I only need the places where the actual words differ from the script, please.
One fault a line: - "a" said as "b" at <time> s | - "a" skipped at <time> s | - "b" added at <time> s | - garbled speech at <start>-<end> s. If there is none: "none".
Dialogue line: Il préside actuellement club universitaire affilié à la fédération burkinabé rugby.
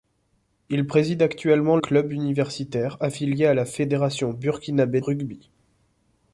none